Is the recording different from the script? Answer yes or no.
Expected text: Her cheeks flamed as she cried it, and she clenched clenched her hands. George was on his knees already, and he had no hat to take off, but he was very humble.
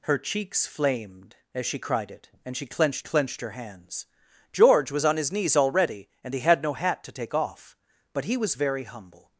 no